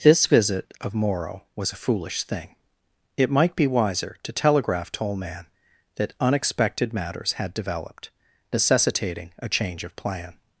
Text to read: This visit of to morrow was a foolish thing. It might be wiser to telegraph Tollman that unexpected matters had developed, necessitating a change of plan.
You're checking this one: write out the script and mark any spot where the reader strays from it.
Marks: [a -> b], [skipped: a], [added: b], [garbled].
This visit of [skipped: to] morrow was a foolish thing. It might be wiser to telegraph Tollman that unexpected matters had developed, necessitating a change of plan.